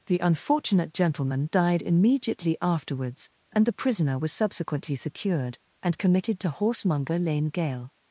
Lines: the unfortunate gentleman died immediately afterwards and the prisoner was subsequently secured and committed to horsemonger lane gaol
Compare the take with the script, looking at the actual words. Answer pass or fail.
pass